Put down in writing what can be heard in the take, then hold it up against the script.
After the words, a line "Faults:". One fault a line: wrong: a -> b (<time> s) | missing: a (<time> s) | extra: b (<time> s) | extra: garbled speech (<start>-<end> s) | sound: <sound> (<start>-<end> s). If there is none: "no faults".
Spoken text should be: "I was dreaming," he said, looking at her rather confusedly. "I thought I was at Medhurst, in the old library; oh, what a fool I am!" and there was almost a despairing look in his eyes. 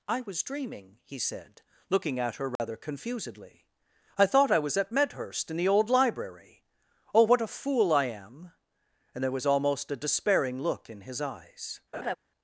"I was dreaming," he said, looking at her rather confusedly. "I thought I was at Medhurst, in the old library; oh, what a fool I am!" and there was almost a despairing look in his eyes.
Faults:
sound: dropout (2.6-2.6 s)
sound: laugh (11.9-12.2 s)